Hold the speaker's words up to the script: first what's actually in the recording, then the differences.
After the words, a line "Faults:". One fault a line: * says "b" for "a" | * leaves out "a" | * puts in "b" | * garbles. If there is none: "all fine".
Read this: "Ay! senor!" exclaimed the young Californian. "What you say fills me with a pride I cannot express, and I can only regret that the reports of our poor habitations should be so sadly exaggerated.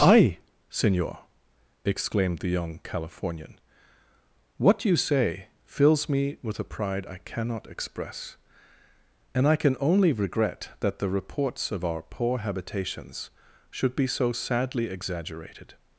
"Ay! senor!" exclaimed the young Californian. "What you say fills me with a pride I cannot express, and I can only regret that the reports of our poor habitations should be so sadly exaggerated.
Faults:
all fine